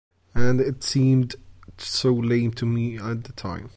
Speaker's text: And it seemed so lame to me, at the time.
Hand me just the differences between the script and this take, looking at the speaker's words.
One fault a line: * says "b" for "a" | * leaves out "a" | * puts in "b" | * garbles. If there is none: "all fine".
all fine